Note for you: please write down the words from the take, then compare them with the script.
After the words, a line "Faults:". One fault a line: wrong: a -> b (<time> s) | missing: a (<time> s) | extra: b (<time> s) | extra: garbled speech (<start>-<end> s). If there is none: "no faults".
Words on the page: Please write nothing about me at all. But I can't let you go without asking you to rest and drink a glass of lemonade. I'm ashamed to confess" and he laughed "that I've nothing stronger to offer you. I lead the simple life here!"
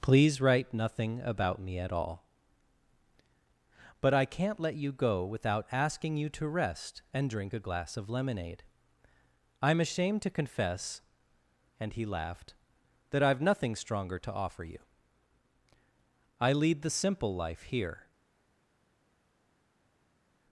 Please write nothing about me at all. But I can't let you go without asking you to rest and drink a glass of lemonade. I'm ashamed to confess" and he laughed "that I've nothing stronger to offer you. I lead the simple life here!"
Faults:
no faults